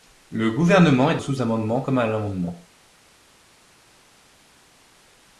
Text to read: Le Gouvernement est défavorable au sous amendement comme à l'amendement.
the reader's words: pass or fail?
fail